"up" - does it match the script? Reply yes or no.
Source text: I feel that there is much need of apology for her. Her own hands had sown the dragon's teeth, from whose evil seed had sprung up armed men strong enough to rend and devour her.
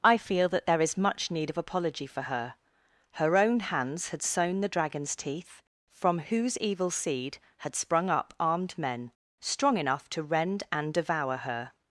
yes